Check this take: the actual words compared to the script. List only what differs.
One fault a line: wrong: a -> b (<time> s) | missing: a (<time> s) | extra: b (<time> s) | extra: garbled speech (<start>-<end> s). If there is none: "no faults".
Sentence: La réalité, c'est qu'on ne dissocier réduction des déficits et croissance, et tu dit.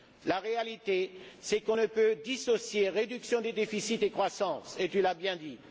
extra: peut (1.9 s)
extra: l'as bien (5.0 s)